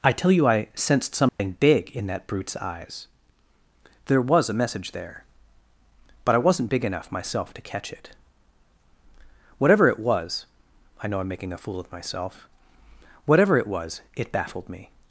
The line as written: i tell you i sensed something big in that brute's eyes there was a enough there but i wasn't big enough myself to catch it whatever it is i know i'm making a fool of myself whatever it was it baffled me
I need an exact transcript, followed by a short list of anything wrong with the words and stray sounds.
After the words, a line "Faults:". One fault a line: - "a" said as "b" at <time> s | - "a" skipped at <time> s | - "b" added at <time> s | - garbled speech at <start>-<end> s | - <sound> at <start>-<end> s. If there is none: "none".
i tell you i sensed something big in that brute's eyes there was a message there but i wasn't big enough myself to catch it whatever it was i know i'm making a fool of myself whatever it was it baffled me
Faults:
- dropout at 1.3-1.4 s
- "enough" said as "message" at 4.5 s
- "is" said as "was" at 10.0 s